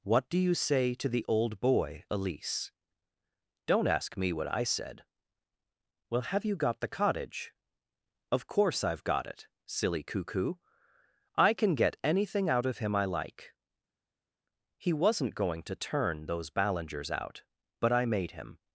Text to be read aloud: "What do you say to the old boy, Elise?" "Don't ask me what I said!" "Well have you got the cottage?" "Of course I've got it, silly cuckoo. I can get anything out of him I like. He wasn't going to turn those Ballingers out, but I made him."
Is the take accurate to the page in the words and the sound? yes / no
yes